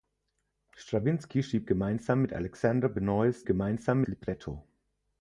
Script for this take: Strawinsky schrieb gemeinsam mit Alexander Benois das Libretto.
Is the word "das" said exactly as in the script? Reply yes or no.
no